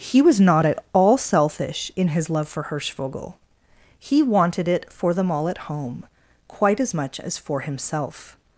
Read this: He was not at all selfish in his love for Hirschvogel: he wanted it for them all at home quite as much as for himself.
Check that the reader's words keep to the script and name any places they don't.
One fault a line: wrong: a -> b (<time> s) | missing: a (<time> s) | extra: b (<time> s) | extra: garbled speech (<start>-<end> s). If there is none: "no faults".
no faults